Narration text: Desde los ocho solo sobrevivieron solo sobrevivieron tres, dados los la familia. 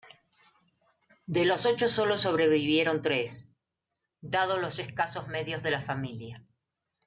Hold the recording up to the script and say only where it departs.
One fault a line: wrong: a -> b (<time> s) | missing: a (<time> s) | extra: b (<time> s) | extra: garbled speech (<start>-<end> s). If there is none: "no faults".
wrong: Desde -> De (1.3 s)
missing: solo sobrevivieron (3.0 s)
extra: escasos medios de (4.8 s)